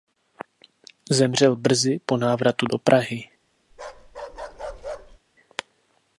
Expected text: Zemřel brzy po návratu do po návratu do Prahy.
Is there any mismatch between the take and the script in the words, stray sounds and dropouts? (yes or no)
yes